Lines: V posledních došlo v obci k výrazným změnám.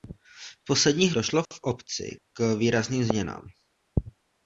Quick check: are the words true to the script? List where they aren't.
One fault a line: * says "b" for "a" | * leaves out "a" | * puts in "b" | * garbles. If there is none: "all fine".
all fine